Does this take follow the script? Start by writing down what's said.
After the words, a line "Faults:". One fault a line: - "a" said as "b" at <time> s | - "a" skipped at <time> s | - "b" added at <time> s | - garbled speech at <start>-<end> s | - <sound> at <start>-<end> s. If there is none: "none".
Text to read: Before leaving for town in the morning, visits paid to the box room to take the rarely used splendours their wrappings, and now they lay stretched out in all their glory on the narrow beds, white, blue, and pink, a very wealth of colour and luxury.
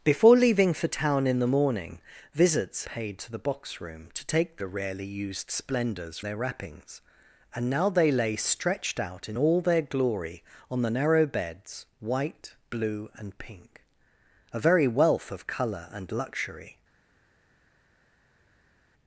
Before leaving for town in the morning, visits paid to the box room to take the rarely used splendours their wrappings, and now they lay stretched out in all their glory on the narrow beds, white, blue, and pink, a very wealth of colour and luxury.
Faults:
none